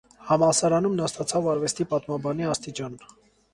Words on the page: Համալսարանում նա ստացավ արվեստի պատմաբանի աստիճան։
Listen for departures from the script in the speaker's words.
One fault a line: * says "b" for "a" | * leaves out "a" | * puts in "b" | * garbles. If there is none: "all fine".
all fine